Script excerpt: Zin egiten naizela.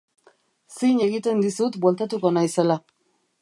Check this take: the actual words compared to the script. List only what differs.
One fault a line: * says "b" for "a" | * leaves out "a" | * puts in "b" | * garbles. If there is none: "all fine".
* puts in "dizut bueltatuko"